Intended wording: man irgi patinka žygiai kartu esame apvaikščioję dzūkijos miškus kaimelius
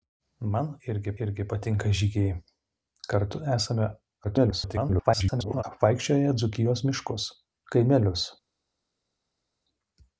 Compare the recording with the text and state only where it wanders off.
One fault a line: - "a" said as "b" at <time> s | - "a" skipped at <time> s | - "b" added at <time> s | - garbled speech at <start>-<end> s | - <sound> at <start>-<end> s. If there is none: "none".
- "irgi" added at 1.3 s
- garbled speech at 4.2-5.6 s